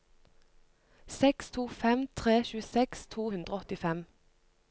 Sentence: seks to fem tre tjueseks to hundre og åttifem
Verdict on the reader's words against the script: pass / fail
pass